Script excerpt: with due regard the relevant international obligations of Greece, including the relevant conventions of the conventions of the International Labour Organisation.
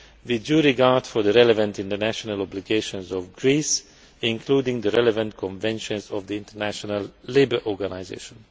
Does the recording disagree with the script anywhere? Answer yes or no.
yes